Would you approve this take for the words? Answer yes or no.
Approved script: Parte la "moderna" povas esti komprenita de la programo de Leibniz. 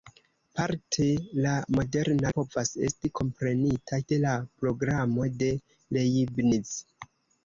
yes